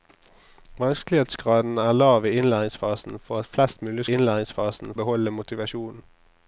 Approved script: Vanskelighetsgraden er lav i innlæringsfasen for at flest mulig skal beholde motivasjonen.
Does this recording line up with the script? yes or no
no